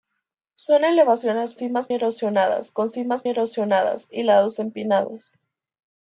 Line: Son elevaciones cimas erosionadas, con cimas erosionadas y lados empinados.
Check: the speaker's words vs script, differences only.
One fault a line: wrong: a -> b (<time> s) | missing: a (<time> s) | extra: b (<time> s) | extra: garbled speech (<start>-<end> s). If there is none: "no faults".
no faults